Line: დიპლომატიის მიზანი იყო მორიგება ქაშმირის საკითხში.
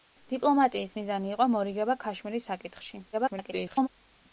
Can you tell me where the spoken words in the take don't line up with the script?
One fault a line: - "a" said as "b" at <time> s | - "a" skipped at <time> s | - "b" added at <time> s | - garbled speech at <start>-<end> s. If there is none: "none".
- garbled speech at 3.1-3.9 s